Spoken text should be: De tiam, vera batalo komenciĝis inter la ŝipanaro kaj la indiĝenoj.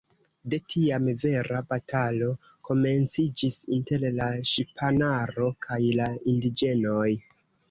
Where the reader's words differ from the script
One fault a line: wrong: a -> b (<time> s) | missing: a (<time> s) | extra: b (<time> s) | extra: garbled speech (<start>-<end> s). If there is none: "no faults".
no faults